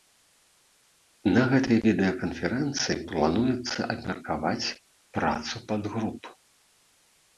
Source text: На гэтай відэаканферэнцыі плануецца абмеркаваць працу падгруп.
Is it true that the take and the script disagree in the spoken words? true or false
false